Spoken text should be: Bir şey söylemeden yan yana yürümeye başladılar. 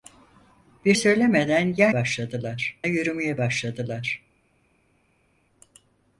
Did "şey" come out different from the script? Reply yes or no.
yes